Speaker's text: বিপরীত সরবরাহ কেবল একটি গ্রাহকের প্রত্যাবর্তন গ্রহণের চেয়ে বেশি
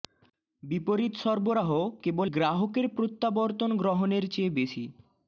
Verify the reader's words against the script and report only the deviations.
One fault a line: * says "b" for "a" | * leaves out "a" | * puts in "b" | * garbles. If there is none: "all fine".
* leaves out "একটি"